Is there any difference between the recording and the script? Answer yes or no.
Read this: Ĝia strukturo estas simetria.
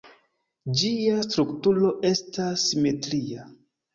no